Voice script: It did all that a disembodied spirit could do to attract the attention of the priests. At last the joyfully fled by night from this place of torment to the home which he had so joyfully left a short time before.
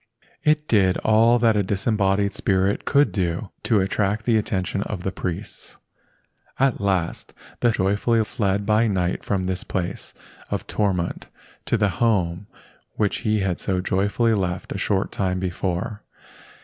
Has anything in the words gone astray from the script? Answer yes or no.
no